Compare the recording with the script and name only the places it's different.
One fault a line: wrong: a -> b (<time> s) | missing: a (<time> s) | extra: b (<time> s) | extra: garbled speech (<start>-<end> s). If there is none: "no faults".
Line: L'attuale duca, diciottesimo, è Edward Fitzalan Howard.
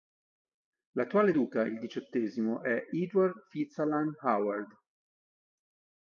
extra: il (1.6 s)